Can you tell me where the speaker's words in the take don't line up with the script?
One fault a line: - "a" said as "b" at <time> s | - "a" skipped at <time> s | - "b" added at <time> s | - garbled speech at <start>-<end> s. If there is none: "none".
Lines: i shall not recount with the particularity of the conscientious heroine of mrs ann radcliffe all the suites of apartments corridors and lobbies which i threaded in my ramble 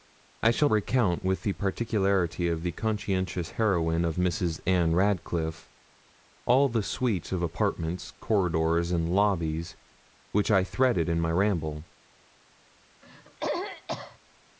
- "not" skipped at 0.7 s